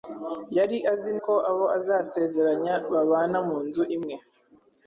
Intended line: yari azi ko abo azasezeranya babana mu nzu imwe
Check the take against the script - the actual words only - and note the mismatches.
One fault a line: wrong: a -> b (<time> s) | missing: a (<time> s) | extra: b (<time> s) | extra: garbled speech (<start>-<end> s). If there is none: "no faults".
no faults